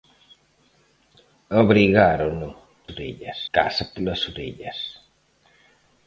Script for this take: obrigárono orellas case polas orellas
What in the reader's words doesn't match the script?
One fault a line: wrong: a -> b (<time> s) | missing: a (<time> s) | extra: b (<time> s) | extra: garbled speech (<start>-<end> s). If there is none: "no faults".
no faults